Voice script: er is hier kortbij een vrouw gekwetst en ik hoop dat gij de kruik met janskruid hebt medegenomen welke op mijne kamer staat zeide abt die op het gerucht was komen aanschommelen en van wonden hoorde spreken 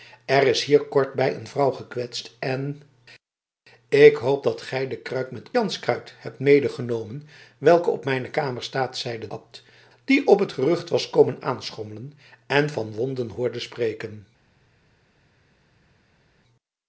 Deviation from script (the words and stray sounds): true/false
false